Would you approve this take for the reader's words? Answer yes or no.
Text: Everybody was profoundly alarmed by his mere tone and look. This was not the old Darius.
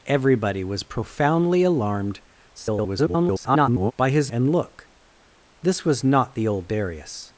no